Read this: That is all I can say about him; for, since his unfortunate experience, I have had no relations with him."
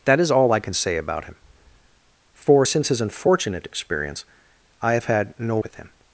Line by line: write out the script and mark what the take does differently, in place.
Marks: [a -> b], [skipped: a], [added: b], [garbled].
That is all I can say about him; for, since his unfortunate experience, I have had no [skipped: relations] with him."